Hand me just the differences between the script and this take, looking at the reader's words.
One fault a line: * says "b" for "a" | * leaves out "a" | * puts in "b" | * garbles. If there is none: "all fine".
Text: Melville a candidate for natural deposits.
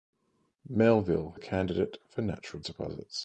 all fine